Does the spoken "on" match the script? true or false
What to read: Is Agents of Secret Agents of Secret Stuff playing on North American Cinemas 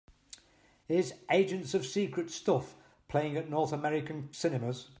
false